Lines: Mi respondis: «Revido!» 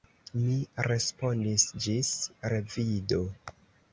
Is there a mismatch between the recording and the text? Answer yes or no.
yes